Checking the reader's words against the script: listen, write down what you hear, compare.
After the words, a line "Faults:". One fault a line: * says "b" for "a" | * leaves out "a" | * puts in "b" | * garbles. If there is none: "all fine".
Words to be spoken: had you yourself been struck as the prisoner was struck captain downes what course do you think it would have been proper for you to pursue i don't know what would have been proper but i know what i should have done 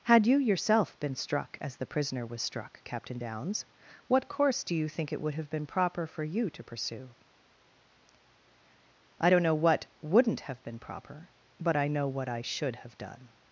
had you yourself been struck as the prisoner was struck captain downes what course do you think it would have been proper for you to pursue i don't know what wouldn't have been proper but i know what i should have done
Faults:
* says "wouldn't" for "would"